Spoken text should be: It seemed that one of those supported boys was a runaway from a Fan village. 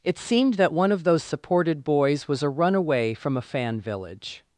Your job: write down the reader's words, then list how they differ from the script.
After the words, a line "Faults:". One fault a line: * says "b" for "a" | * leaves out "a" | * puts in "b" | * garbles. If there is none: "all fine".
It seemed that one of those supported boys was a runaway from a Fan village.
Faults:
all fine